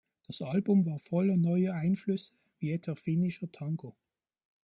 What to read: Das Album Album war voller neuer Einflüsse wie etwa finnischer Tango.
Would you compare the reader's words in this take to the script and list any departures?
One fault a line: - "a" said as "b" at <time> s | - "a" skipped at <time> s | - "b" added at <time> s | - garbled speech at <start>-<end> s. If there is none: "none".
- "Album" skipped at 0.8 s